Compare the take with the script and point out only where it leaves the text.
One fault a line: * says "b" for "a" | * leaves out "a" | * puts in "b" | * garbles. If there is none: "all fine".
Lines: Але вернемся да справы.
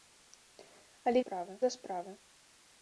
* says "справы" for "вернемся"